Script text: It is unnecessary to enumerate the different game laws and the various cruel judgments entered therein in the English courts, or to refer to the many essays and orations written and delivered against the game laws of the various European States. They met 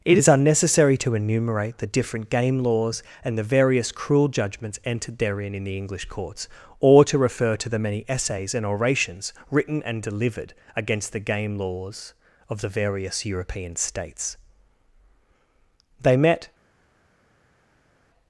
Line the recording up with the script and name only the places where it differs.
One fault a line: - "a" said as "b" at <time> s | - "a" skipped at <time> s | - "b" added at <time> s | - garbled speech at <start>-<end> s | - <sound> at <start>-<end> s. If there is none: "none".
none